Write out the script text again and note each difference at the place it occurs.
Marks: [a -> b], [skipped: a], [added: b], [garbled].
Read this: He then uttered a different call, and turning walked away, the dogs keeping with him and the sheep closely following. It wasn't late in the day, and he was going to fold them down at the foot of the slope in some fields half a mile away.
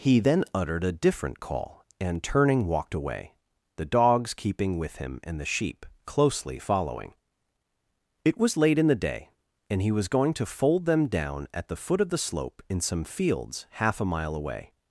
He then uttered a different call, and turning walked away, the dogs keeping with him and the sheep closely following. It [wasn't -> was] late in the day, and he was going to fold them down at the foot of the slope in some fields half a mile away.